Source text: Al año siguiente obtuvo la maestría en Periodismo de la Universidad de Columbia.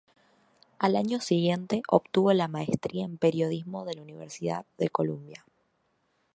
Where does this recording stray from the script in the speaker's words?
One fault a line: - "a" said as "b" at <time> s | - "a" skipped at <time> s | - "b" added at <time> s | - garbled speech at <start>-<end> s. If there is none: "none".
none